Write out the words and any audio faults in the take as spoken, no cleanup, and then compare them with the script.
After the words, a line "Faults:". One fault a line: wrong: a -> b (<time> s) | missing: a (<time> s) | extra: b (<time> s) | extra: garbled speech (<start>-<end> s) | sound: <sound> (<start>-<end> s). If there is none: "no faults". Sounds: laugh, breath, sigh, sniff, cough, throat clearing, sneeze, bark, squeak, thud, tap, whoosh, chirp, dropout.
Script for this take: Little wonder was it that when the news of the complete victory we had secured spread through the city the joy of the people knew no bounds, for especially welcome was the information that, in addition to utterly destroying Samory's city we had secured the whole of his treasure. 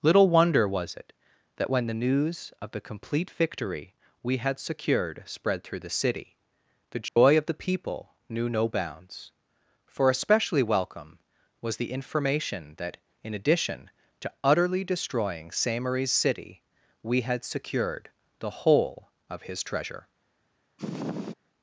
Little wonder was it that when the news of the complete victory we had secured spread through the city the joy of the people knew no bounds, for especially welcome was the information that, in addition to utterly destroying Samory's city we had secured the whole of his treasure.
Faults:
sound: dropout (7.1-7.2 s)
sound: sniff (20.8-21.3 s)